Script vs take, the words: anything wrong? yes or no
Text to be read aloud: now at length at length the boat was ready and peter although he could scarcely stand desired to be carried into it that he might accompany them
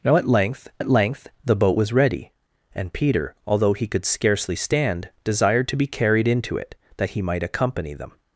no